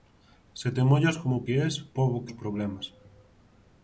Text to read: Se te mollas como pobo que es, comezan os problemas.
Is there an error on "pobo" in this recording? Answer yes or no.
yes